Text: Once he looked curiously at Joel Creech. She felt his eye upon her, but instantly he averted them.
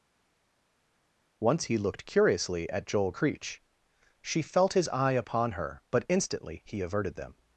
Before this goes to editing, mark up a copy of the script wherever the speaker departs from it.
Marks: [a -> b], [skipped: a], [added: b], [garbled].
Once he looked curiously at Joel Creech. She felt his eye upon her, but instantly he averted them.